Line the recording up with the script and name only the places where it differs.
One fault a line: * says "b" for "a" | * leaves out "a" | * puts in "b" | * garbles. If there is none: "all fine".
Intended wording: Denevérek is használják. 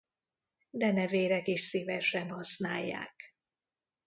* puts in "szívesen"